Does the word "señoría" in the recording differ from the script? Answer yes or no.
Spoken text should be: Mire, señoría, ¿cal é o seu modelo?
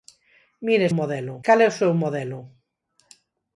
yes